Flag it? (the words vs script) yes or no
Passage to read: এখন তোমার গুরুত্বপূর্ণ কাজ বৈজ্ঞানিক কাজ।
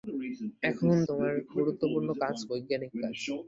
no